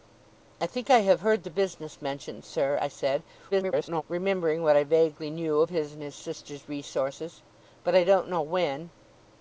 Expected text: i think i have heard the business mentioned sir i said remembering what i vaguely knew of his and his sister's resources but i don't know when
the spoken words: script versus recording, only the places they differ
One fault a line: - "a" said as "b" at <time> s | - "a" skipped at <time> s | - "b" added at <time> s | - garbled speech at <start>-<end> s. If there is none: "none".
- garbled speech at 3.5-4.0 s